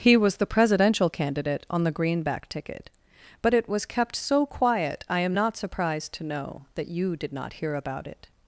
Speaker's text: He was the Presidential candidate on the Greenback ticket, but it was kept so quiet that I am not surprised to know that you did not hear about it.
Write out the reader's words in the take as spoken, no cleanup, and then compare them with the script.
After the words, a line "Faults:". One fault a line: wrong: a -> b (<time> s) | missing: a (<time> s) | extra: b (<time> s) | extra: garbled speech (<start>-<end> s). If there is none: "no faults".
He was the Presidential candidate on the Greenback ticket, but it was kept so quiet I am not surprised to know that you did not hear about it.
Faults:
missing: that (5.0 s)